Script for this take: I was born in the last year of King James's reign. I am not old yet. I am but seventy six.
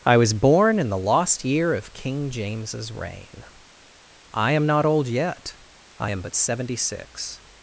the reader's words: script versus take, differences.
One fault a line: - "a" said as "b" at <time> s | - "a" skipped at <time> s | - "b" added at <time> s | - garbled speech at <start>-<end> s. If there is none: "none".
- "last" said as "lost" at 1.0 s